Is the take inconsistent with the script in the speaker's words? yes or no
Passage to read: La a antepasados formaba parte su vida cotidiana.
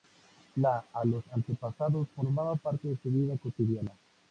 yes